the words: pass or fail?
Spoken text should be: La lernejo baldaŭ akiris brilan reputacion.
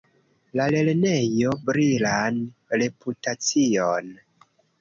fail